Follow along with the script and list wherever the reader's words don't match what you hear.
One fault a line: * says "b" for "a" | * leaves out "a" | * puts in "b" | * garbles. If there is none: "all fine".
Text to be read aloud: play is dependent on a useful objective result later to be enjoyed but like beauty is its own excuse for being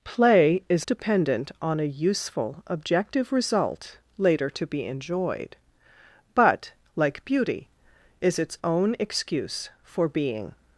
all fine